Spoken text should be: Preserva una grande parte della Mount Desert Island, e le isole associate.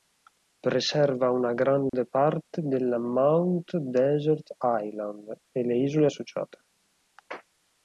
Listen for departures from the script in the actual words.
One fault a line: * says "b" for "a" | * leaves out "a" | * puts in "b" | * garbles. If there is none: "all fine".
all fine